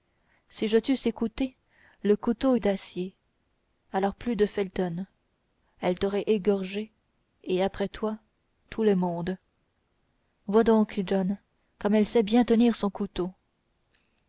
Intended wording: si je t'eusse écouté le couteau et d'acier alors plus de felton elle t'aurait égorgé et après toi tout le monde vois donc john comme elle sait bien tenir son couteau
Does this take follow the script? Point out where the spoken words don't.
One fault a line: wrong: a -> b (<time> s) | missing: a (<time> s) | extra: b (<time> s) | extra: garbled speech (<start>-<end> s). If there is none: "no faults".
no faults